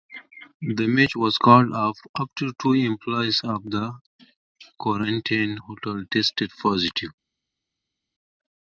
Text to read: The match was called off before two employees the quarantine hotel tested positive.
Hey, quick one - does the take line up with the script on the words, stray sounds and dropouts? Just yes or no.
no